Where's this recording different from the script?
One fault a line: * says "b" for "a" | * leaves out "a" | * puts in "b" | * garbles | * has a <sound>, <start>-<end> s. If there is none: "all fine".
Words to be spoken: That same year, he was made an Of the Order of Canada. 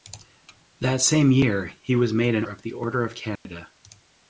* has a dropout, 3.4-3.5 s